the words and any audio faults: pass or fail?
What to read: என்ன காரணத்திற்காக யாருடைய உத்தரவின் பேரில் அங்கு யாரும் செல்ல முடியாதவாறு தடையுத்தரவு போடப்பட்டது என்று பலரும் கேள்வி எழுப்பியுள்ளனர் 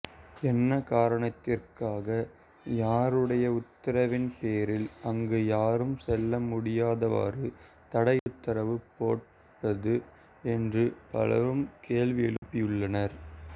fail